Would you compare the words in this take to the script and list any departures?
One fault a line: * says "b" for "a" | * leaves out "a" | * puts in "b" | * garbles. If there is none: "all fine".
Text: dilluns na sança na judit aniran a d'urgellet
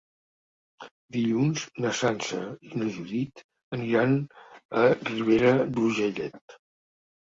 * puts in "i"
* puts in "ribera"